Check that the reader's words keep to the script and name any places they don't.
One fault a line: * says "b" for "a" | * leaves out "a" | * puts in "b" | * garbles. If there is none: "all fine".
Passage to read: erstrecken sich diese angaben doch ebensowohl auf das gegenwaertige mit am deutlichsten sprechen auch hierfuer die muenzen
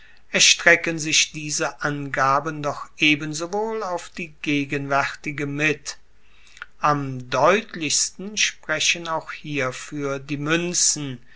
* says "die" for "das"